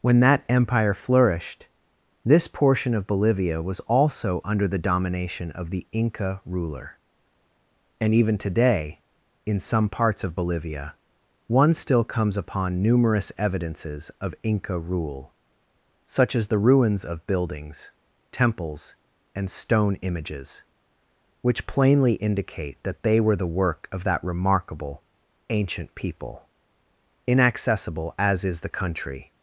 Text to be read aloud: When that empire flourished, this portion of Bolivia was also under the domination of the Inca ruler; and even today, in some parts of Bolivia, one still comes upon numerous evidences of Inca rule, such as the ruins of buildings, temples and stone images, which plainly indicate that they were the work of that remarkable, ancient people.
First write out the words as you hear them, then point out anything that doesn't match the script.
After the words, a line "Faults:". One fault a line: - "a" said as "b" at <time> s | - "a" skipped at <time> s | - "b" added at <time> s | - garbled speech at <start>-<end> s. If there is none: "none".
When that empire flourished, this portion of Bolivia was also under the domination of the Inca ruler; and even today, in some parts of Bolivia, one still comes upon numerous evidences of Inca rule, such as the ruins of buildings, temples and stone images, which plainly indicate that they were the work of that remarkable, ancient people. Inaccessible as is the country
Faults:
- "Inaccessible as is the country" added at 27.3 s